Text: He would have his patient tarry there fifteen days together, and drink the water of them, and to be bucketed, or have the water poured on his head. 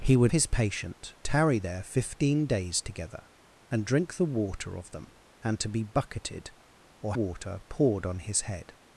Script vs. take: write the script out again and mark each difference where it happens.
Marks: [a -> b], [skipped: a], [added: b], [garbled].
He would [skipped: have] his patient tarry there fifteen days together, and drink the water of them, and to be bucketed, or [skipped: have the] water poured on his head.